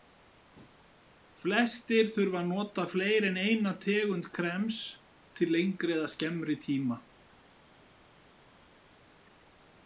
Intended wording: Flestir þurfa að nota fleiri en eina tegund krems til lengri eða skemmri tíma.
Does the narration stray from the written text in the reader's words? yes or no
no